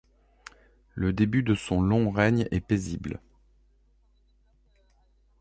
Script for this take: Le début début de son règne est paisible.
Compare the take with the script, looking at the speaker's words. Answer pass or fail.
fail